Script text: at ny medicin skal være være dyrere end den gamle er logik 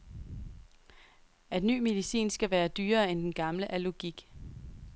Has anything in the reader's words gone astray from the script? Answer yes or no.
yes